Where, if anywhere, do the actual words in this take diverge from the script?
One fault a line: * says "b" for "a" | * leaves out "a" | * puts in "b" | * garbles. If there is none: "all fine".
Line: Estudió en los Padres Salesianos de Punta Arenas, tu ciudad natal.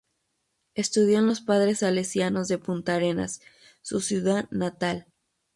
* says "su" for "tu"